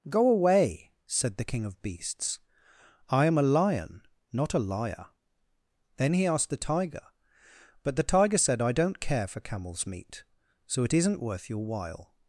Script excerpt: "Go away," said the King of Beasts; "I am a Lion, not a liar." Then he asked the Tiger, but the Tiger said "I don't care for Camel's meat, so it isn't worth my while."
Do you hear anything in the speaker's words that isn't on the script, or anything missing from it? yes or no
yes